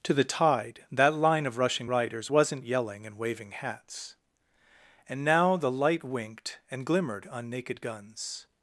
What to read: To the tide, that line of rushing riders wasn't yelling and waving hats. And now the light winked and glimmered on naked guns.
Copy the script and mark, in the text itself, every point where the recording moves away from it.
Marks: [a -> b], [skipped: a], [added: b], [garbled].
To the tide, that line of rushing riders wasn't yelling and waving hats. And now the light winked and glimmered on naked guns.